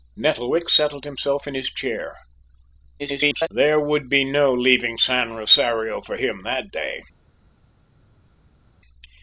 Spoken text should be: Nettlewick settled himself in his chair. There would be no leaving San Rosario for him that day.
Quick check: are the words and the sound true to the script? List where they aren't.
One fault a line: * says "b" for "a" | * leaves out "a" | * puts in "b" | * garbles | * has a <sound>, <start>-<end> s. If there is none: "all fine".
* garbles